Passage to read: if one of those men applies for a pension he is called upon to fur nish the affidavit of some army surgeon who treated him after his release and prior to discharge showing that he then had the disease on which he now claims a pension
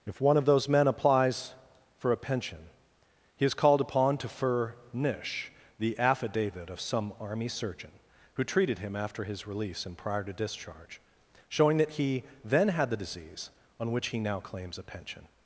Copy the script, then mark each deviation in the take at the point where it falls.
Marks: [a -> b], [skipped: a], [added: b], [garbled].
if one of those men applies for a pension he is called upon to fur nish the affidavit of some army surgeon who treated him after his release and prior to discharge showing that he then had the disease on which he now claims a pension